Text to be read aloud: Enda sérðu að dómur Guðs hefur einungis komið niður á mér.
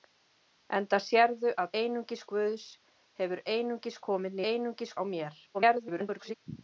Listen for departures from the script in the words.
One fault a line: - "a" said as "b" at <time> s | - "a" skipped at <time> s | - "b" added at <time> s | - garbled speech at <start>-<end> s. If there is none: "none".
- "dómur" said as "einungis" at 1.8 s
- "niður" said as "einungis" at 4.5 s
- garbled speech at 5.5-6.4 s